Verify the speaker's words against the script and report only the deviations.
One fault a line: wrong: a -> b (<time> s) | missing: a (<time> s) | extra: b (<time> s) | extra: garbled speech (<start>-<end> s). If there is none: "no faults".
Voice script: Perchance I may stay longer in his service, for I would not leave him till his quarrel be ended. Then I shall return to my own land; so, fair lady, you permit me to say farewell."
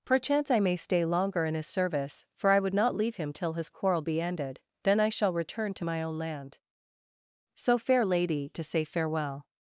missing: you permit me (8.5 s)